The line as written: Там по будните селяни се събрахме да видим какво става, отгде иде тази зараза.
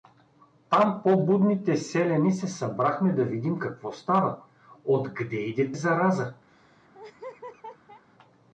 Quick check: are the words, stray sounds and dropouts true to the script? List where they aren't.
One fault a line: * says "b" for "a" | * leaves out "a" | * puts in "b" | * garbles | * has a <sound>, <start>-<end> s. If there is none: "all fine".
* leaves out "тази"
* has a laugh, 6.5-8.0 s